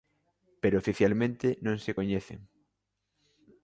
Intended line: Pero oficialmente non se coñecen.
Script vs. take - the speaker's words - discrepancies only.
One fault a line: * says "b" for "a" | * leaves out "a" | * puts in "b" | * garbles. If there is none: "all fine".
all fine